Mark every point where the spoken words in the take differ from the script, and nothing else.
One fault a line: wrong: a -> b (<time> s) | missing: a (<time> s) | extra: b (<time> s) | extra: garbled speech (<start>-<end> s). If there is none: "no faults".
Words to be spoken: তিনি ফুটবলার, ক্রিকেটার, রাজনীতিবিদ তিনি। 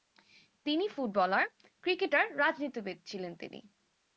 extra: ছিলেন (3.1 s)